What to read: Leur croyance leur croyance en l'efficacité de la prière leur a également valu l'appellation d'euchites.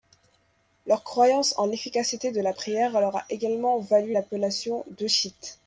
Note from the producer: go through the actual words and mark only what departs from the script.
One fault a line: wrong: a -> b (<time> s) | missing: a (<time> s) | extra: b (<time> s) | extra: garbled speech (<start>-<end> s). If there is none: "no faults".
missing: leur croyance (1.5 s)